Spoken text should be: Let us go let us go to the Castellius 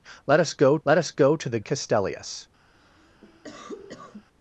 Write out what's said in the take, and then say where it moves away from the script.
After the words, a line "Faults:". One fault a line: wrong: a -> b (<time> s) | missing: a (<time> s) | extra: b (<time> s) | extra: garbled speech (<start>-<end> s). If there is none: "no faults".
Let us go let us go to the Castellius
Faults:
no faults